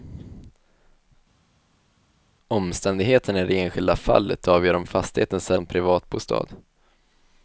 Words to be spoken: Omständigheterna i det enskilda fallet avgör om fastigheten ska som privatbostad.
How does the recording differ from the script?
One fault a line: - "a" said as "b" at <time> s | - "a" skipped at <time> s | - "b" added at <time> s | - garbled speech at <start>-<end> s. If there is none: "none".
none